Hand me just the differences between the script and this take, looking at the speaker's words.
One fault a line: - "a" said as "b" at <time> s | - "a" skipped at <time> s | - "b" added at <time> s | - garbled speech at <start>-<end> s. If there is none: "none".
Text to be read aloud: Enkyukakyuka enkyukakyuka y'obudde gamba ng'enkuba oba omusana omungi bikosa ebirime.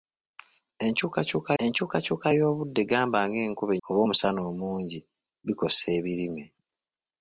none